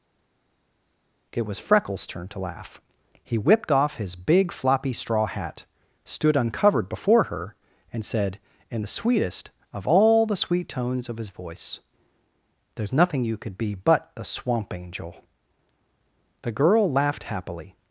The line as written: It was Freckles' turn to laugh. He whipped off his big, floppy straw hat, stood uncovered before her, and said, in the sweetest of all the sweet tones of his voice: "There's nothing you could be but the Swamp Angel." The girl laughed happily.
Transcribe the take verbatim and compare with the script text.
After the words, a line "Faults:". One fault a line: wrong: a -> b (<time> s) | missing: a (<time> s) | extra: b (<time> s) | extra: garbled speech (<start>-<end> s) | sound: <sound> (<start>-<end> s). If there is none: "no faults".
It was Freckles' turn to laugh. He whipped off his big, floppy straw hat, stood uncovered before her, and said, in the sweetest of all the sweet tones of his voice: "There's nothing you could be but a Swamp Angel." The girl laughed happily.
Faults:
wrong: the -> a (14.2 s)